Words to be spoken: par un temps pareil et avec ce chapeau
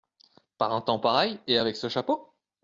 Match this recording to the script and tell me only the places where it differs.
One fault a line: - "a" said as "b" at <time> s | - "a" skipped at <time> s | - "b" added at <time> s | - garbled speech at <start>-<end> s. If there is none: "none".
none